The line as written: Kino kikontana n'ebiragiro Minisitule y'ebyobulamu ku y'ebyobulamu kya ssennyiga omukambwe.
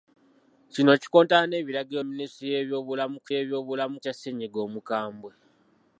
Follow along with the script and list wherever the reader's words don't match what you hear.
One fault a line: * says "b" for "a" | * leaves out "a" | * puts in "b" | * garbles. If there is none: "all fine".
all fine